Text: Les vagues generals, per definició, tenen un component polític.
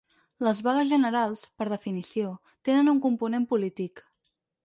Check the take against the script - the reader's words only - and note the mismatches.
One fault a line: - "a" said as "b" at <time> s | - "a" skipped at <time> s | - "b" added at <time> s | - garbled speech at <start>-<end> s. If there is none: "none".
none